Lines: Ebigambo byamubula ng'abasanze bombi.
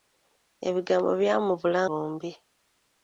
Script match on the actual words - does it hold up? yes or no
no